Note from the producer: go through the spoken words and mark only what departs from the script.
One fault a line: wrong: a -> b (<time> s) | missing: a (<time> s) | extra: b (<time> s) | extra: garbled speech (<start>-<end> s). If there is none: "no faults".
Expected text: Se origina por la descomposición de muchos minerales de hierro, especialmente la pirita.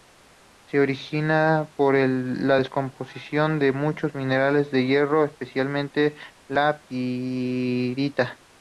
no faults